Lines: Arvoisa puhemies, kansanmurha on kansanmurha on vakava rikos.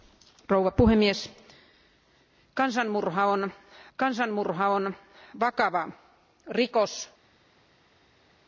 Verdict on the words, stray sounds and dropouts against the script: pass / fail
pass